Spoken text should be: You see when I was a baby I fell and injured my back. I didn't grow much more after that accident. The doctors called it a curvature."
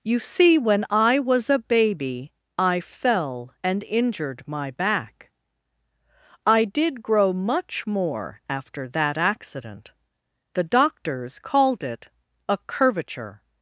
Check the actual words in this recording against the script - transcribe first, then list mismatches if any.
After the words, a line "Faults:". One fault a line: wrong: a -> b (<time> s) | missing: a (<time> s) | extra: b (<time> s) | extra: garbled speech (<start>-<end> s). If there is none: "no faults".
You see when I was a baby I fell and injured my back. I did grow much more after that accident. The doctors called it a curvature."
Faults:
wrong: didn't -> did (6.7 s)